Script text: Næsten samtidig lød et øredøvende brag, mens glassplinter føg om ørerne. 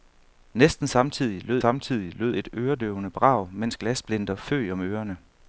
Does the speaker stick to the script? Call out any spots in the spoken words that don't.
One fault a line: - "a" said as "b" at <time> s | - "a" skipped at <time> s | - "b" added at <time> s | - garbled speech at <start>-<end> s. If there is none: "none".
- "samtidig lød" added at 1.6 s